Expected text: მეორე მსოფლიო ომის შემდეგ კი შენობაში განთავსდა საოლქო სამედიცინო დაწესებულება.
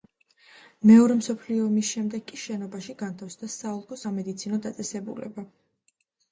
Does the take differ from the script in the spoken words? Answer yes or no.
no